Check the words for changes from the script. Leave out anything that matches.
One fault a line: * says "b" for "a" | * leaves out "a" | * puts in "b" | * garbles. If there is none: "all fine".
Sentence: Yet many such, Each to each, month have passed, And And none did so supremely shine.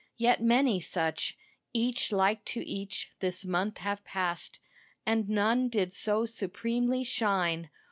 * puts in "like"
* puts in "this"
* leaves out "And"